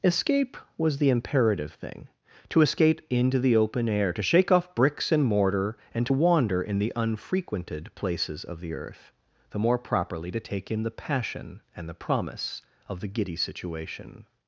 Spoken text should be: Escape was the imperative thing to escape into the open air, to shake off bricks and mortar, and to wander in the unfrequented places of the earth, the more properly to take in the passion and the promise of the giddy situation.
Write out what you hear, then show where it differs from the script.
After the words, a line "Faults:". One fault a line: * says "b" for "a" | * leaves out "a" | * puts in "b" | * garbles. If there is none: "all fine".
Escape was the imperative thing to escape into the open air, to shake off bricks and mortar, and to wander in the unfrequented places of the earth, the more properly to take in the passion and the promise of the giddy situation.
Faults:
all fine